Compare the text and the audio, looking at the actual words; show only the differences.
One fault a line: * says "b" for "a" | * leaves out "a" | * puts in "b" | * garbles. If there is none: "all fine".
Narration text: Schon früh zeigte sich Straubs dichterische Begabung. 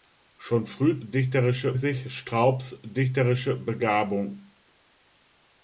* says "dichterische" for "zeigte"